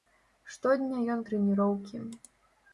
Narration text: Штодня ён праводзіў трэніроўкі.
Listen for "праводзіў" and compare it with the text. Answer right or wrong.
wrong